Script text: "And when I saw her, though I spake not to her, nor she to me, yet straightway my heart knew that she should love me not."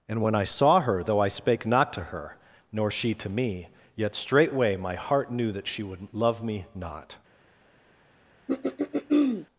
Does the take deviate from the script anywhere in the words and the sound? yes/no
yes